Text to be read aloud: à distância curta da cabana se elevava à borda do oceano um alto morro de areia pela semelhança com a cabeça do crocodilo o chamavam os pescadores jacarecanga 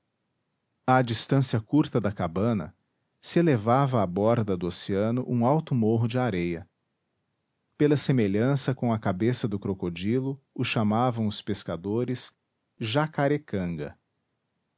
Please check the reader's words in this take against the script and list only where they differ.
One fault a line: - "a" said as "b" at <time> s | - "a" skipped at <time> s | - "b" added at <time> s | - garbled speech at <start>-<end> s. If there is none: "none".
none